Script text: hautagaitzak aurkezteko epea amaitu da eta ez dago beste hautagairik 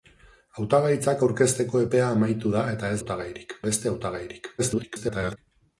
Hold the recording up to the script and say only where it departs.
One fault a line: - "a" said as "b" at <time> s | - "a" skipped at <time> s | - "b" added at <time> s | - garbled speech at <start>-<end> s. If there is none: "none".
- "dago" said as "hautagairik" at 3.0 s
- garbled speech at 4.6-5.4 s